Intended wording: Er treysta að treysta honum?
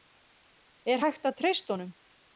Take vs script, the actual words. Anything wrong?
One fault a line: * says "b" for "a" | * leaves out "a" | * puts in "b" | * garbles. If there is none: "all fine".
* says "hægt" for "treysta"